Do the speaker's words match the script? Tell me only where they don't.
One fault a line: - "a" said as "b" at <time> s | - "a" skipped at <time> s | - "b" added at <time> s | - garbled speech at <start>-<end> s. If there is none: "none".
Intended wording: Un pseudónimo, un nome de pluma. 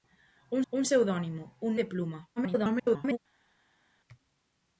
- "un" added at 0.7 s
- "nome" skipped at 1.8 s
- garbled speech at 2.4-3.2 s